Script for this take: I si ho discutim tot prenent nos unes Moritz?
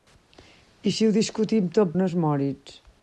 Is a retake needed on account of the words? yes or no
yes